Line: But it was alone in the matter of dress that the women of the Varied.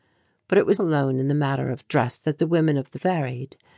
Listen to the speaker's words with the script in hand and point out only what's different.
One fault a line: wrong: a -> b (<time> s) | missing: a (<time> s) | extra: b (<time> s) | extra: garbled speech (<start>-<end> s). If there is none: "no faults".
no faults